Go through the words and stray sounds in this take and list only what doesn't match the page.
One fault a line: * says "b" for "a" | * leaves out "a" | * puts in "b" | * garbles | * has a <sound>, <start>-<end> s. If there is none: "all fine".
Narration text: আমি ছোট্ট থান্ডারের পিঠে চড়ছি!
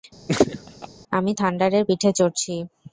* has a laugh, 0.3-0.9 s
* leaves out "ছোট্ট"